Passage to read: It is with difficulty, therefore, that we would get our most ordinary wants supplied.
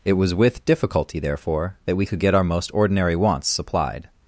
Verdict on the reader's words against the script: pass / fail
fail